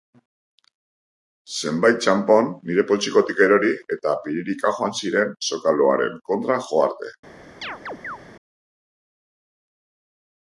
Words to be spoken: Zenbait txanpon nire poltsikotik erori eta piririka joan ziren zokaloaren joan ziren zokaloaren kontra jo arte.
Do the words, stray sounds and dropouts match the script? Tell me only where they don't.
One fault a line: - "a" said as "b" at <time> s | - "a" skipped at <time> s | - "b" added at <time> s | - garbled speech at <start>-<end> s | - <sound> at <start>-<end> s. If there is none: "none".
- "joan ziren zokaloaren" skipped at 6.2 s
- chirp at 7.6-8.2 s